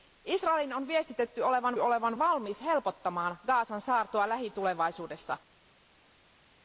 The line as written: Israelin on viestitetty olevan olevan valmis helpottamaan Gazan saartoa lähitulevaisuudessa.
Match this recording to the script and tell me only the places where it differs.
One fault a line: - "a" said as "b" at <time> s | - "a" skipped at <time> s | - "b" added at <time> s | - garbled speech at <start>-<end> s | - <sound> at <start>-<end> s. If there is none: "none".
none